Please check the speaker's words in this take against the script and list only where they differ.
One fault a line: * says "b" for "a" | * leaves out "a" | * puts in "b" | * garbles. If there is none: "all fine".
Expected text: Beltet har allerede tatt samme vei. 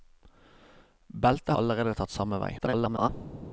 * leaves out "har"
* garbles